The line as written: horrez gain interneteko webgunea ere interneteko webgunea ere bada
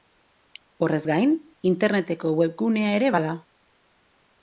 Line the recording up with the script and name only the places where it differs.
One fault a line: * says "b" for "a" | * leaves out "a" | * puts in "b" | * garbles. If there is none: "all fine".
* leaves out "interneteko webgunea ere"